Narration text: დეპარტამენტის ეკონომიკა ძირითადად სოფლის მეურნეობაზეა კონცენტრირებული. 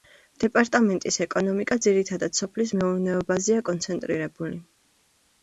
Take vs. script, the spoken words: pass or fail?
pass